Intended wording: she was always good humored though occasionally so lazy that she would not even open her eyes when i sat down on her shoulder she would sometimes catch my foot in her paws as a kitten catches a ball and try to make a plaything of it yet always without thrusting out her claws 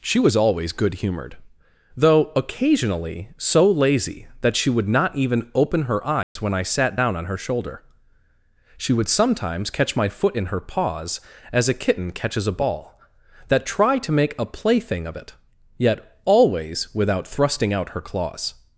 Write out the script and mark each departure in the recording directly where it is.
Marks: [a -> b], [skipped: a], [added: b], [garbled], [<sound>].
she was always good humored though occasionally so lazy that she would not even open her eyes [dropout] when i sat down on her shoulder she would sometimes catch my foot in her paws as a kitten catches a ball [and -> that] try to make a plaything of it yet always without thrusting out her claws